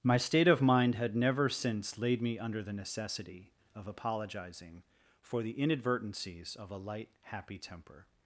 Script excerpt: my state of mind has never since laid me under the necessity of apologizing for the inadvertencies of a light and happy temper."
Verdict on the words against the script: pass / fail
fail